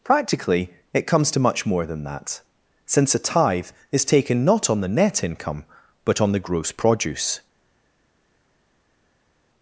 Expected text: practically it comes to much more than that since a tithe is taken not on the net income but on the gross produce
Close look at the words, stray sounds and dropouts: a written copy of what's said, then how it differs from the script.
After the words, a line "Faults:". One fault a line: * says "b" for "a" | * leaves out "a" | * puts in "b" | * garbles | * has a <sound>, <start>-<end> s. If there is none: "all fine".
practically it comes to much more than that since a tithe is taken not on the net income but on the gross produce
Faults:
all fine